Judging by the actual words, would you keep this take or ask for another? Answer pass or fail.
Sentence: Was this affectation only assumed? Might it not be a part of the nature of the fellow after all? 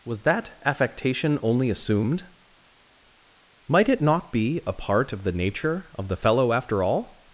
fail